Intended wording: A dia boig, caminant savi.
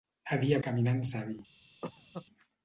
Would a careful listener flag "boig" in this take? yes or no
yes